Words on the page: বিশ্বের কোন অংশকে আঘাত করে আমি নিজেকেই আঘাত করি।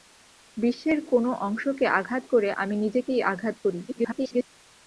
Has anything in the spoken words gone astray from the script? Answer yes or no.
yes